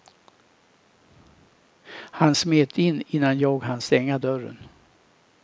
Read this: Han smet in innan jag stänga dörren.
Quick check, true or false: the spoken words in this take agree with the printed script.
false